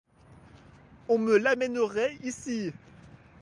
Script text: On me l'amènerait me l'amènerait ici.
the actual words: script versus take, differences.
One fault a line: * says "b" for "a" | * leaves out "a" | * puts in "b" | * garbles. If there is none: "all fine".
* leaves out "me l'amènerait"